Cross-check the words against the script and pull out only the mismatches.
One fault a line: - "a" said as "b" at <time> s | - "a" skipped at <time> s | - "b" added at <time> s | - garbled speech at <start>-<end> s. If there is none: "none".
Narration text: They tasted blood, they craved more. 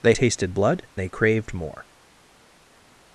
none